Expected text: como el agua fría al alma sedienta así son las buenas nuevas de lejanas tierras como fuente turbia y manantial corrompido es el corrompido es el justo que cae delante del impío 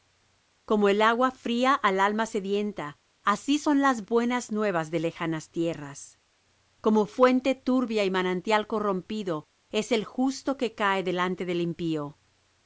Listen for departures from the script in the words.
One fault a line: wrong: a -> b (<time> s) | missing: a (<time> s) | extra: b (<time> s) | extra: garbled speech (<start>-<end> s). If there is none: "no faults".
missing: corrompido es el (10.0 s)